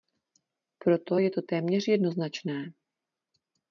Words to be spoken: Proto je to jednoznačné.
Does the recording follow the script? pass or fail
fail